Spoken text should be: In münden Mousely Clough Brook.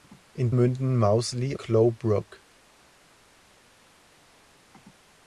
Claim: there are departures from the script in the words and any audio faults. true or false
false